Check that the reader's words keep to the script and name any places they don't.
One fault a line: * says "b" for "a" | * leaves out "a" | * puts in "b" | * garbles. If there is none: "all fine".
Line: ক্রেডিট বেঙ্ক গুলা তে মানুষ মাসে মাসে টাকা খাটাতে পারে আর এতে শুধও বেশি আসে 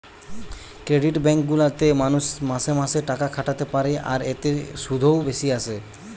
all fine